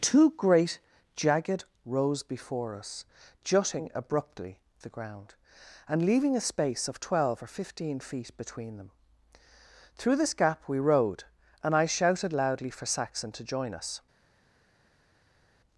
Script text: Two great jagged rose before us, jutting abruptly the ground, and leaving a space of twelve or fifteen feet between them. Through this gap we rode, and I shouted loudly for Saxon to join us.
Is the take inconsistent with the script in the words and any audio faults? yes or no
no